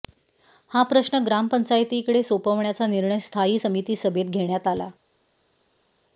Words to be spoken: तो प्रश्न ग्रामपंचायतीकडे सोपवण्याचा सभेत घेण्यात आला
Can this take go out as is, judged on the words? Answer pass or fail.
fail